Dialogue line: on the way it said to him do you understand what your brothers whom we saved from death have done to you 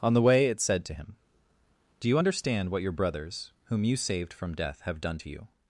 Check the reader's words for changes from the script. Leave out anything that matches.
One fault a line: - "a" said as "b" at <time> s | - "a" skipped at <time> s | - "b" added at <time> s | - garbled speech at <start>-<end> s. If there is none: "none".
- "we" said as "you" at 3.8 s